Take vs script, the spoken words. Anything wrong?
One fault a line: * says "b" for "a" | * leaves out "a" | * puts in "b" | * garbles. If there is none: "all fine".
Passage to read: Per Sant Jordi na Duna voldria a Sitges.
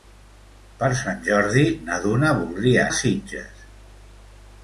all fine